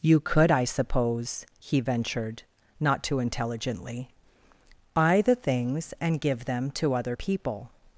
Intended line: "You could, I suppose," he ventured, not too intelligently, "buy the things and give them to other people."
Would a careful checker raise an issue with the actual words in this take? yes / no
no